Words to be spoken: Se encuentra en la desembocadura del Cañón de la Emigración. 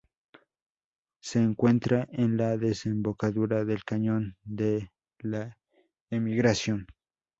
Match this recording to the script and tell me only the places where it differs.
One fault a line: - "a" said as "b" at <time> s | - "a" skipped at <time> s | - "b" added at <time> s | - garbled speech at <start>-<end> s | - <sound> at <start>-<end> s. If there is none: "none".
none